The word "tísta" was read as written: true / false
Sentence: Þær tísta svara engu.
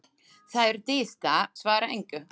true